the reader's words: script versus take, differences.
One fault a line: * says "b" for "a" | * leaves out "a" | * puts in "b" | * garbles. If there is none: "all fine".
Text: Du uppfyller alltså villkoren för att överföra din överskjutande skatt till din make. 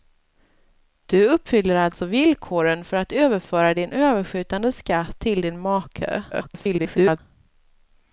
* garbles